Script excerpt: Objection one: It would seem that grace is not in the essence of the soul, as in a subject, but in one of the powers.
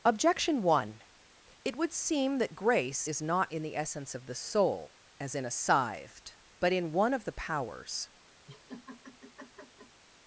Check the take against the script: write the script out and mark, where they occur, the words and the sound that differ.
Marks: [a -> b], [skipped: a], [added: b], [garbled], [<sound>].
Objection one: It would seem that grace is not in the essence of the soul, as in a [subject, -> scythed] but in one of the powers. [laugh]